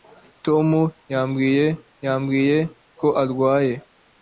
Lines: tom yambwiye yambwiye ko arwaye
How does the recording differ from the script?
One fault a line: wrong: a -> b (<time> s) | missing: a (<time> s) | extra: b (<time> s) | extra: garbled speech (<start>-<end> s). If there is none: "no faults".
no faults